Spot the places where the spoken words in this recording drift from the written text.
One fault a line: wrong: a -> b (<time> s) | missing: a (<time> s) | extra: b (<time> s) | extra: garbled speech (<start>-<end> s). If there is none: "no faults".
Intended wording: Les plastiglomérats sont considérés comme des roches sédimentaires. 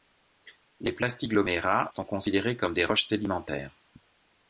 no faults